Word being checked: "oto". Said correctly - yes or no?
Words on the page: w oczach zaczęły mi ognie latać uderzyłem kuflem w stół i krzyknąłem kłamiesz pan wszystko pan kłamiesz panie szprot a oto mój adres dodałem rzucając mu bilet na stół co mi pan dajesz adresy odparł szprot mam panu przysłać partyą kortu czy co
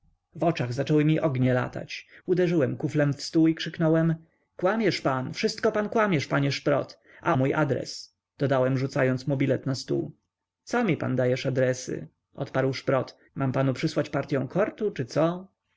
no